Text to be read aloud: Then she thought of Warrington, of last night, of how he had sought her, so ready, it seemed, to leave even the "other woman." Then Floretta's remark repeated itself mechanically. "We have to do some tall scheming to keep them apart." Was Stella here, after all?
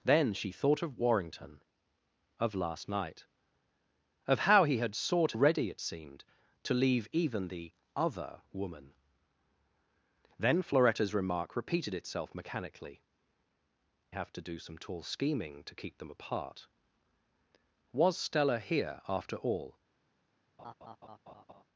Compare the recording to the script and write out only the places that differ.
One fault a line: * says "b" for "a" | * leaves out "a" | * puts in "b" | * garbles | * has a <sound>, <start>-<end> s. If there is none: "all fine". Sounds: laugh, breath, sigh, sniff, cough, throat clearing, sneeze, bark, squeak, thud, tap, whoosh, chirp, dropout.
* leaves out "her so"
* leaves out "We"
* has a laugh, 20.6-21.6 s